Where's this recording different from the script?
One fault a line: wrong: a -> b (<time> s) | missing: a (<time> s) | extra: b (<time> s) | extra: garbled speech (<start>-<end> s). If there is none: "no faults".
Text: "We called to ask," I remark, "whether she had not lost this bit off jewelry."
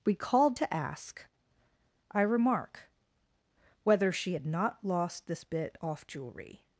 no faults